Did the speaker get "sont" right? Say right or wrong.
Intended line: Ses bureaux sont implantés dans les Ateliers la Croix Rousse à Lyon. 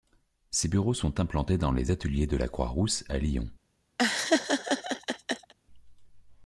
right